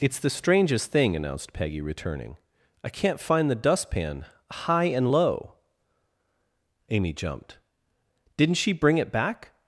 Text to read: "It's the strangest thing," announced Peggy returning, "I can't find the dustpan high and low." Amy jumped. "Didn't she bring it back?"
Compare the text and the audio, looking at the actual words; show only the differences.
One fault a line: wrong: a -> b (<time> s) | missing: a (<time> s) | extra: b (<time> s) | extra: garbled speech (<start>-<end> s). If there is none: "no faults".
no faults